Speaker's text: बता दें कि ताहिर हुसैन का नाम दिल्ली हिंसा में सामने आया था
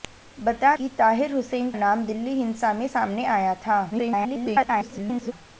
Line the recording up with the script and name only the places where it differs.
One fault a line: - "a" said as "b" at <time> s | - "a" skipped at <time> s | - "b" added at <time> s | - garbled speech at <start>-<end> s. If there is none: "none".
- "दें" skipped at 0.8 s
- "का" skipped at 1.7 s
- garbled speech at 3.9-5.3 s